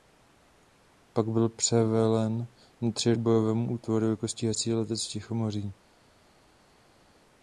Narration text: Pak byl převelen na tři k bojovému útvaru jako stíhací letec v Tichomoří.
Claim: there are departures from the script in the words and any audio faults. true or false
false